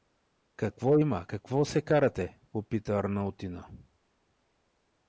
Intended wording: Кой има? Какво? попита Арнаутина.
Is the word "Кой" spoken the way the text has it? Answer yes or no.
no